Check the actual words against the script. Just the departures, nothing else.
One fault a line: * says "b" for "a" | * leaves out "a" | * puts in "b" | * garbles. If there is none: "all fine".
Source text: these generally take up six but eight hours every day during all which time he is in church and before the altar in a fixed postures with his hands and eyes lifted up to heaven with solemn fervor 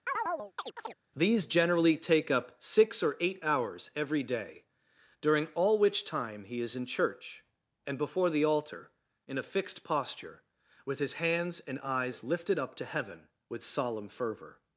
* says "or" for "but"
* says "posture" for "postures"